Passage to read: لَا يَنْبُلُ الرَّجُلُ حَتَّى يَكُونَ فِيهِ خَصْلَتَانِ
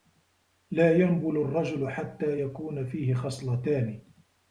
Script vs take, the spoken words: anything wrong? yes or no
no